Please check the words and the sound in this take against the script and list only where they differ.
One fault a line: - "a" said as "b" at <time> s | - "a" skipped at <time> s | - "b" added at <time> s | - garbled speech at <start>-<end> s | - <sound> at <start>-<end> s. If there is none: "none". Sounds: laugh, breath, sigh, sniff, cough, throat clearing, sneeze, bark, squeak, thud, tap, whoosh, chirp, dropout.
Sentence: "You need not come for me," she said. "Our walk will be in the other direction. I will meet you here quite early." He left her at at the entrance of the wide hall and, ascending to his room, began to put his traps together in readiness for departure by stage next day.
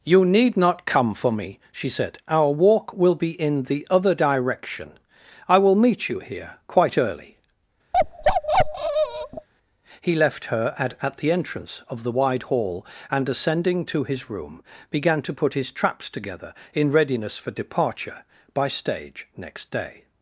- bark at 7.9-9.5 s